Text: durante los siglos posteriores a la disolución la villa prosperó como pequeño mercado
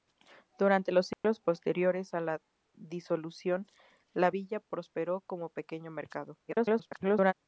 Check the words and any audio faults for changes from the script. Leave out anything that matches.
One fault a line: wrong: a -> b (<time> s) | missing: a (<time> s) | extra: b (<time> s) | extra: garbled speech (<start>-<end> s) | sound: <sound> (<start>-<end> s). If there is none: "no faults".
sound: dropout (1.1-1.2 s)
extra: garbled speech (6.5-7.3 s)